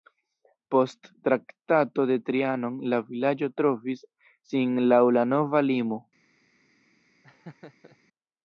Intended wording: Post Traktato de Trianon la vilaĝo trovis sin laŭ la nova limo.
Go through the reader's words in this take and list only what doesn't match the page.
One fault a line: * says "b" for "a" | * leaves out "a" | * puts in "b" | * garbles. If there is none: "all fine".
all fine